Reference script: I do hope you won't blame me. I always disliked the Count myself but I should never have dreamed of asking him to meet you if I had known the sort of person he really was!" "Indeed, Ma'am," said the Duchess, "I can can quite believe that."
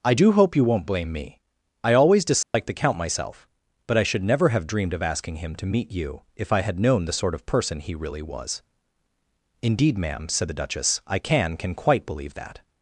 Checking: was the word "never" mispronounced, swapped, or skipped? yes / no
no